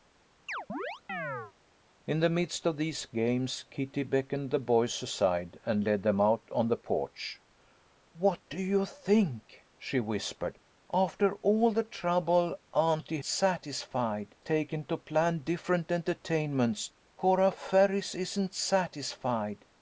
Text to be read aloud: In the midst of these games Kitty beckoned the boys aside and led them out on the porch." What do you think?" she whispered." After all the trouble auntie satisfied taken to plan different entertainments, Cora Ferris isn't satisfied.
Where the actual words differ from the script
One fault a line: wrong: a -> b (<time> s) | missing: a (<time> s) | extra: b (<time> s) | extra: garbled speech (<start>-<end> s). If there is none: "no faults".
no faults